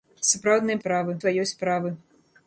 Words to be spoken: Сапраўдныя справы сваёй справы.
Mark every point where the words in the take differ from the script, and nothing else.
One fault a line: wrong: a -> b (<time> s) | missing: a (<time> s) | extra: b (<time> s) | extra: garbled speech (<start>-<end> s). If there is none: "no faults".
no faults